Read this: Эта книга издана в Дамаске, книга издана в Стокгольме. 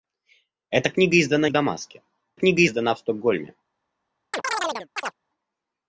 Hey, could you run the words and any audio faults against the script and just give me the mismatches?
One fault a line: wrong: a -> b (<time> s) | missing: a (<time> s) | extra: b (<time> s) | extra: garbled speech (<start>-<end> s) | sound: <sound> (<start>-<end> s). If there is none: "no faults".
sound: chirp (4.3-5.1 s)